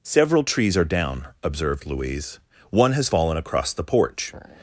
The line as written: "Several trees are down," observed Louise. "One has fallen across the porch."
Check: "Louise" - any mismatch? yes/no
no